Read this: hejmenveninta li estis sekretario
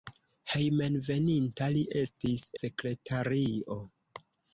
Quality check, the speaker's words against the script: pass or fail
pass